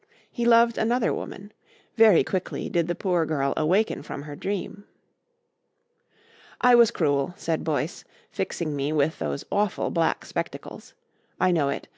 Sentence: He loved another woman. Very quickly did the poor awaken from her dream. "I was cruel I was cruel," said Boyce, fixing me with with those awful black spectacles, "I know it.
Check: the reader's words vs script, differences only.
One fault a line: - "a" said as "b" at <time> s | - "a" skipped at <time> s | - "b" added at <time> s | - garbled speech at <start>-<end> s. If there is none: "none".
- "girl" added at 3.2 s
- "I was cruel" skipped at 7.3 s
- "with" skipped at 9.2 s